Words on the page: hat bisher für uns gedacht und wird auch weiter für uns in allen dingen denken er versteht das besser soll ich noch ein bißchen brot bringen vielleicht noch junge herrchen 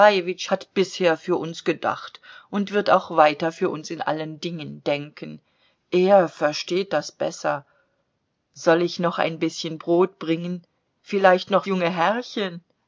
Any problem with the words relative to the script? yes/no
no